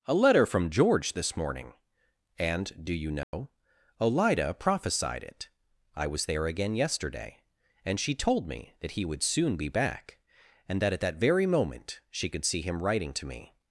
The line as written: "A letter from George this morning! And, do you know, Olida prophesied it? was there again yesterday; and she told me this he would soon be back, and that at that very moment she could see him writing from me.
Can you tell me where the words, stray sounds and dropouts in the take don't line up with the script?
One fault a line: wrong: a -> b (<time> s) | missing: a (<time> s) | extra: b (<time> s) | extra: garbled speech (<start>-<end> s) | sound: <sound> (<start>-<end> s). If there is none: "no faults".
sound: dropout (3.2-3.3 s)
extra: I (6.0 s)
wrong: this -> that (8.8 s)
wrong: from -> to (13.1 s)